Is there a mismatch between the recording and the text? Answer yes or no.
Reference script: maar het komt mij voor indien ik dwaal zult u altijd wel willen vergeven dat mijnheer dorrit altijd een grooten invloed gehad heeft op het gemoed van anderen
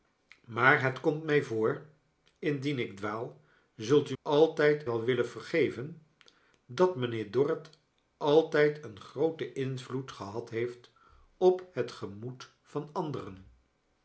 no